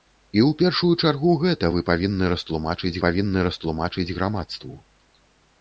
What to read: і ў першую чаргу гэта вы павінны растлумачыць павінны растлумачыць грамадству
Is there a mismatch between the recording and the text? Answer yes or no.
no